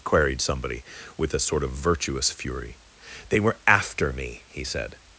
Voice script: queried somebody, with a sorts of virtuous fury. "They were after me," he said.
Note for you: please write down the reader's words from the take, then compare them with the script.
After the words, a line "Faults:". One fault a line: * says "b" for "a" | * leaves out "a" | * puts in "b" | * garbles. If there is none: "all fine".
queried somebody, with a sort of virtuous fury. "They were after me," he said.
Faults:
* says "sort" for "sorts"